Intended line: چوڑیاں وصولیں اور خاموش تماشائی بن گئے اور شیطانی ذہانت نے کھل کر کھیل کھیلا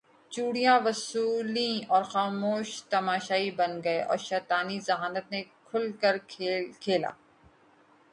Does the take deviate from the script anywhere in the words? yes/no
no